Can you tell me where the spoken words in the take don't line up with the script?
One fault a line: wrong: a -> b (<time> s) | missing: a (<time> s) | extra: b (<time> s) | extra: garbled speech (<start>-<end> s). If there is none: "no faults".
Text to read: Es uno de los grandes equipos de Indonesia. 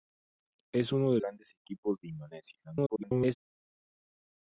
missing: los (1.2 s)
extra: garbled speech (2.6-3.3 s)